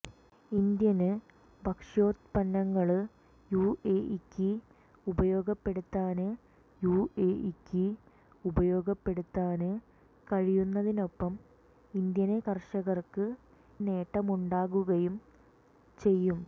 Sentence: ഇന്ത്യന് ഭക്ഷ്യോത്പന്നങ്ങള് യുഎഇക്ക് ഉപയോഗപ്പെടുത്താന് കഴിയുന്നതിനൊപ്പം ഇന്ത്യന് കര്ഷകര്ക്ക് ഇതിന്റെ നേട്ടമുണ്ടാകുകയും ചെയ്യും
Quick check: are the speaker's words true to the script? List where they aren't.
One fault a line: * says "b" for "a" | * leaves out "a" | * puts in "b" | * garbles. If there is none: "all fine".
* puts in "യുഎഇക്ക് ഉപയോഗപ്പെടുത്താന്"
* leaves out "ഇതിന്റെ"